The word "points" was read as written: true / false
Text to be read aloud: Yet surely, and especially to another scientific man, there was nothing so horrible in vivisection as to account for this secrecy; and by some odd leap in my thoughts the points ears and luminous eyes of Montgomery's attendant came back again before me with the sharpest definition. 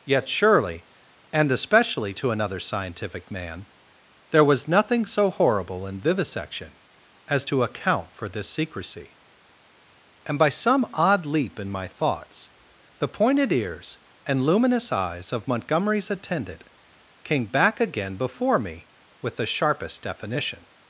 false